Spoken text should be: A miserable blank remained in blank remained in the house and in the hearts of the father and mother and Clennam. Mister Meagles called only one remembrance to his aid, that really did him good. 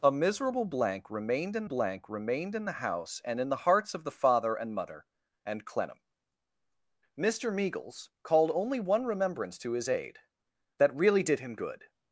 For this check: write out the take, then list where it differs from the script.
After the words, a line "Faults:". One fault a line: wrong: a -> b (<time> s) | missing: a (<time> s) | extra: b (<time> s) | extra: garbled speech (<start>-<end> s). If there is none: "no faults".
A miserable blank remained in blank remained in the house and in the hearts of the father and mother and Clennam. Mister Meagles called only one remembrance to his aid, that really did him good.
Faults:
no faults